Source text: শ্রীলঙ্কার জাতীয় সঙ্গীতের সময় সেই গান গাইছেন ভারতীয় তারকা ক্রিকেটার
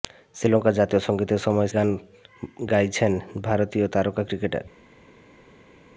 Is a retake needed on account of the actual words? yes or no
yes